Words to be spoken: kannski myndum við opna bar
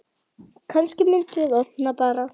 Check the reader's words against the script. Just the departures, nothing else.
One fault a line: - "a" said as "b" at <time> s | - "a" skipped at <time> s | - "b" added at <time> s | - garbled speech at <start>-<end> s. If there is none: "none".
none